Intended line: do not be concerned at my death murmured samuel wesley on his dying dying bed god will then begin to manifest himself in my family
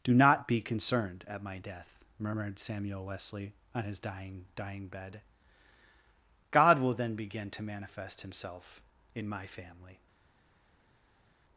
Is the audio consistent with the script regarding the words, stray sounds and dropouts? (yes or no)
yes